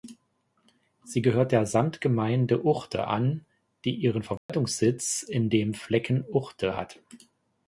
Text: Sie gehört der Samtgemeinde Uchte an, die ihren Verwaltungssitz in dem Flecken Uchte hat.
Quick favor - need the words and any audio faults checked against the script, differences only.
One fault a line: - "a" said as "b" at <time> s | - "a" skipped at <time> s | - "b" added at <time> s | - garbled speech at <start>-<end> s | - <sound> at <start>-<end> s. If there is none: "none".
- dropout at 4.4-4.5 s